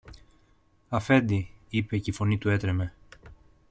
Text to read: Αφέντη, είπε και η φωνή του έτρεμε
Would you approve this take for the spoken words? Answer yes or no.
yes